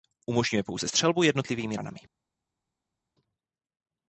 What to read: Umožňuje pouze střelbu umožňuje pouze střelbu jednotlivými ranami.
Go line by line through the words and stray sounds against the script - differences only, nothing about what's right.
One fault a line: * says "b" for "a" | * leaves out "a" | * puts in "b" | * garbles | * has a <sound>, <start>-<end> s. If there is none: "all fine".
* leaves out "umožňuje pouze střelbu"